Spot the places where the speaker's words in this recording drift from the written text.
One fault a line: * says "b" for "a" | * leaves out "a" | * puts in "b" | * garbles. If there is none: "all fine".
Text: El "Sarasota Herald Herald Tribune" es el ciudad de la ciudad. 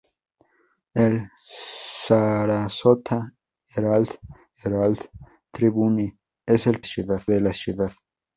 all fine